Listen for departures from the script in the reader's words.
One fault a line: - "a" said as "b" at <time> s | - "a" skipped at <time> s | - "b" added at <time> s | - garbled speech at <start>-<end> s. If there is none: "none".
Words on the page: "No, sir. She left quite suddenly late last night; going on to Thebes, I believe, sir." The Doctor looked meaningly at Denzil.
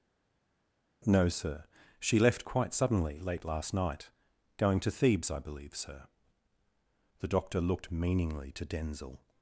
- "on" skipped at 4.8 s
- "at" said as "to" at 8.5 s